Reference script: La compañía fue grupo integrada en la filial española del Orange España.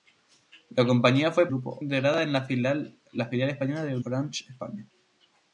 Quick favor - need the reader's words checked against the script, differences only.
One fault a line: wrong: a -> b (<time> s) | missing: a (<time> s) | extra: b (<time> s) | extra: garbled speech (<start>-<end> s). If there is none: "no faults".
no faults